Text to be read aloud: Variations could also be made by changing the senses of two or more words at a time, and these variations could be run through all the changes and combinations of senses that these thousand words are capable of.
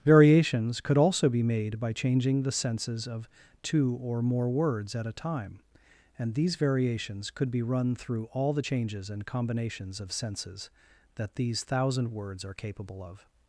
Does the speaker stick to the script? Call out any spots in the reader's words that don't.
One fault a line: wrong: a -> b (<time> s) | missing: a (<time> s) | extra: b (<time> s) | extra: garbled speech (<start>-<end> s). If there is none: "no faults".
no faults